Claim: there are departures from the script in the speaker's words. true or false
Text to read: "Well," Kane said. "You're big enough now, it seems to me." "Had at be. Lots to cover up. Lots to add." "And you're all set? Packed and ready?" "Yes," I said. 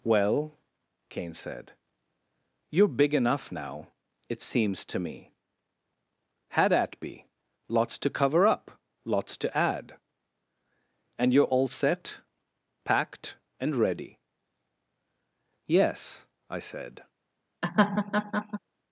false